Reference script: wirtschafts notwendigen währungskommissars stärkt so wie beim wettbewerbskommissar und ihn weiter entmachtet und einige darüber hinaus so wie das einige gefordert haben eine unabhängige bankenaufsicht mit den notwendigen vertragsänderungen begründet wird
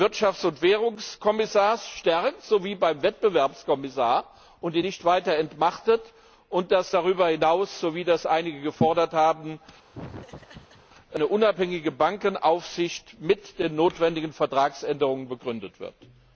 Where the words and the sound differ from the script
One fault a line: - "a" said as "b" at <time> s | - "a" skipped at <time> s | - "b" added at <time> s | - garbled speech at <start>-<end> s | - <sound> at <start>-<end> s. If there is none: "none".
- "notwendigen" said as "und" at 0.5 s
- "nicht" added at 4.8 s
- "einige" said as "dass" at 6.7 s
- laugh at 9.9-10.9 s